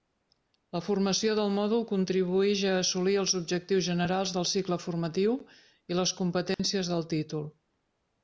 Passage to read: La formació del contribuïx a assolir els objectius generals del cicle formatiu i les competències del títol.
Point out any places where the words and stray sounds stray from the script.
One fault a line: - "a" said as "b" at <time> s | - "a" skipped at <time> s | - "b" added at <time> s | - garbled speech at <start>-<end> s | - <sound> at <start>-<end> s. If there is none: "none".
- "mòdul" added at 1.6 s
- dropout at 6.5-6.6 s